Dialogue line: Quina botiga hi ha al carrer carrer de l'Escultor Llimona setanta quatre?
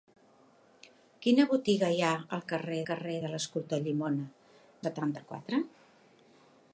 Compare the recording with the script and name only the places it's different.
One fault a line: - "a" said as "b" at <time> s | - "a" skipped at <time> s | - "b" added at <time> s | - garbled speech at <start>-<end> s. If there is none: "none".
none